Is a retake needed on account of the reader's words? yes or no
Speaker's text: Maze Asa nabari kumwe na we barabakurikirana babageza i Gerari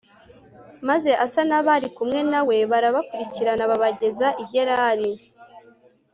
no